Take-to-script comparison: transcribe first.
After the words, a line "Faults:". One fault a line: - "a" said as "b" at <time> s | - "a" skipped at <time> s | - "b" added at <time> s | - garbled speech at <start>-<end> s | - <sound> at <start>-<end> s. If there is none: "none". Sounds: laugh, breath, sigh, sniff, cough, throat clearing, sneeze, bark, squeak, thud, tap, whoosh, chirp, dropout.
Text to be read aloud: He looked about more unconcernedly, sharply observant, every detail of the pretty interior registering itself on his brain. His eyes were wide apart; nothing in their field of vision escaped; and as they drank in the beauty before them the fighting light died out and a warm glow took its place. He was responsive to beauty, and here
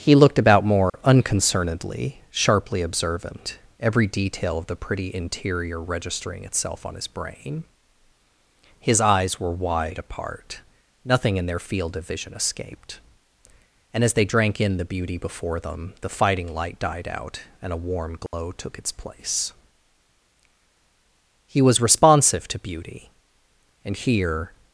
He looked about more unconcernedly, sharply observant, every detail of the pretty interior registering itself on his brain. His eyes were wide apart; nothing in their field of vision escaped; and as they drank in the beauty before them the fighting light died out and a warm glow took its place. He was responsive to beauty, and here
Faults:
- dropout at 0.9-0.9 s
- dropout at 18.3-18.3 s